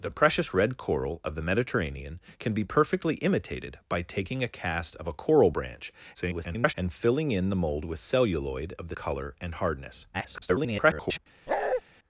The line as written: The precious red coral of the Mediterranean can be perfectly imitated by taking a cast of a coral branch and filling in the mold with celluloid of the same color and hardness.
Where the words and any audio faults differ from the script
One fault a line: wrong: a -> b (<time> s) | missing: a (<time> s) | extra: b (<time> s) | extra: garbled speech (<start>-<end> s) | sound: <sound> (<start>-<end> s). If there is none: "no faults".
extra: garbled speech (6.1-6.7 s)
missing: same (9.0 s)
extra: garbled speech (10.1-11.2 s)
sound: bark (11.5-11.8 s)